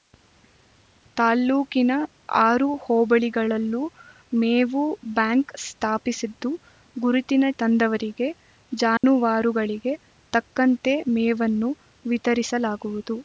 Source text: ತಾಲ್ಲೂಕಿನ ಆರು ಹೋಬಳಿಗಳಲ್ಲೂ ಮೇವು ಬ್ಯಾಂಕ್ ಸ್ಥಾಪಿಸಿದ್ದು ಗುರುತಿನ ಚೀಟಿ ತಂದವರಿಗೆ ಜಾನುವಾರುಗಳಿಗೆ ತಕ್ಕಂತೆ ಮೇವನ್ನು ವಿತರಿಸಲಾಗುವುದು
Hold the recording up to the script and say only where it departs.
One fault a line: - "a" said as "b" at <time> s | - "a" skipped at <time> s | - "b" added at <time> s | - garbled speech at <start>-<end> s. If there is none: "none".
- "ಚೀಟಿ" skipped at 7.5 s